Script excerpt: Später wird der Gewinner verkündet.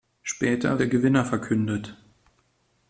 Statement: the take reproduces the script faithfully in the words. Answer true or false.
false